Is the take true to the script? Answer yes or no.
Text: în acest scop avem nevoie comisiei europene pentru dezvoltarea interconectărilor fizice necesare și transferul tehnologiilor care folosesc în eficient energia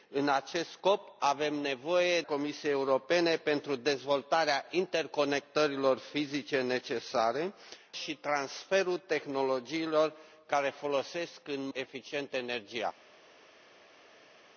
yes